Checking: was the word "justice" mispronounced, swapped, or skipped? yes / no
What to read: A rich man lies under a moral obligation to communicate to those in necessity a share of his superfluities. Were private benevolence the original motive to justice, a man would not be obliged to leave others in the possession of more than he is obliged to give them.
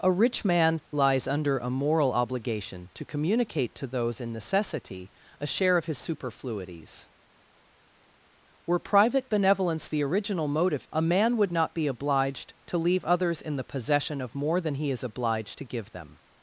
yes